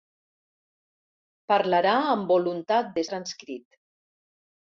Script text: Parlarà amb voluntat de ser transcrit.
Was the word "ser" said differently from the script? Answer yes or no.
yes